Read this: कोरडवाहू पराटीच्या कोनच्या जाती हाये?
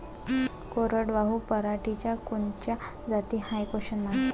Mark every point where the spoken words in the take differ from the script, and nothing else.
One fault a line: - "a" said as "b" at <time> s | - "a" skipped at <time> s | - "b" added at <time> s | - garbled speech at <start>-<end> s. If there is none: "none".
none